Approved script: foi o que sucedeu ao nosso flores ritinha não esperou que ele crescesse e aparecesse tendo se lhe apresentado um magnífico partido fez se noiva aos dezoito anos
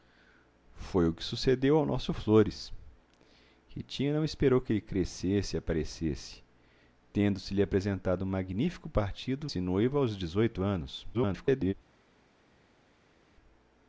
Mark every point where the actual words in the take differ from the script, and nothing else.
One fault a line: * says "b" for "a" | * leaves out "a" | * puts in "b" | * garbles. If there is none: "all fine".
* leaves out "fez"
* garbles